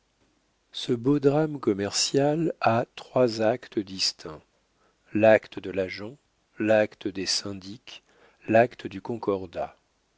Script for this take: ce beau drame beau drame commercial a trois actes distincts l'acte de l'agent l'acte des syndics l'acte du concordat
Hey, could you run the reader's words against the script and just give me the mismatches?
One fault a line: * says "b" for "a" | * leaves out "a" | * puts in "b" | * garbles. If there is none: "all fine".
* leaves out "beau drame"